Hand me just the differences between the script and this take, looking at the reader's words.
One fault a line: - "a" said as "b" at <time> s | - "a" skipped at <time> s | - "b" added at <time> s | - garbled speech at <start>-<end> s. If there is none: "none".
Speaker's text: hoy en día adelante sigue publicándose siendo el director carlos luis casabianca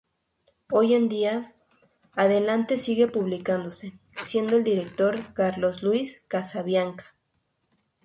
none